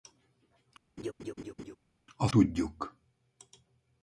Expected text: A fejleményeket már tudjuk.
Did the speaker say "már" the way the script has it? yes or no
no